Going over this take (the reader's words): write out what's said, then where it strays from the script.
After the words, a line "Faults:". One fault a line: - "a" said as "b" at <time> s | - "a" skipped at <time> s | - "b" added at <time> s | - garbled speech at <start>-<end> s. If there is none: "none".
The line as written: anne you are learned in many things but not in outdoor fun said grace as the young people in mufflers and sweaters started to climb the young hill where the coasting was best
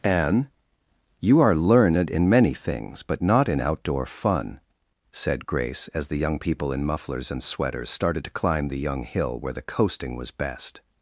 anne you are learned in many things but not in outdoor fun said grace as the young people in mufflers and sweaters started to climb the young hill where the coasting was best
Faults:
none